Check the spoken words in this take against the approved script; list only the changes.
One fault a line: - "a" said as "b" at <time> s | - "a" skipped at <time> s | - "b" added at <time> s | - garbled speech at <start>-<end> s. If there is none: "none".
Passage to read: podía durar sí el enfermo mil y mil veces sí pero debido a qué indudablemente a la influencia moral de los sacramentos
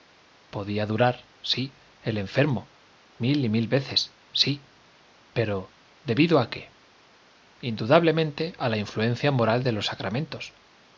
none